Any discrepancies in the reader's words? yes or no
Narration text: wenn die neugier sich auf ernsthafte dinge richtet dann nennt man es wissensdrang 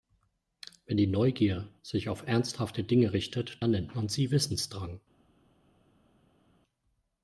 yes